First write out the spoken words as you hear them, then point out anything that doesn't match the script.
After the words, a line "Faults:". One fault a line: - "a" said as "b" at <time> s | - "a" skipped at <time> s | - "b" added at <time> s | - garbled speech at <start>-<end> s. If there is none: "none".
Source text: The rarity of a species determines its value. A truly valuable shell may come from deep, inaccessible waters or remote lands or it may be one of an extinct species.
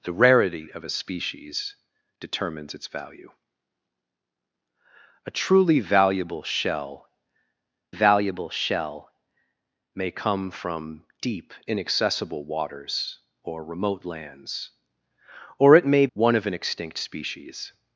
The rarity of a species determines its value. A truly valuable shell valuable shell may come from deep, inaccessible waters or remote lands or it may one of an extinct species.
Faults:
- "valuable shell" added at 7.9 s
- "be" skipped at 16.1 s